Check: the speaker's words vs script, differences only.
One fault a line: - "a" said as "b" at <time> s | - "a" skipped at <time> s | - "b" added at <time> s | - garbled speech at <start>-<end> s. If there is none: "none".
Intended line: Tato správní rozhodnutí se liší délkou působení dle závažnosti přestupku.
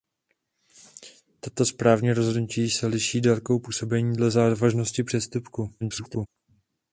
- garbled speech at 5.8-6.3 s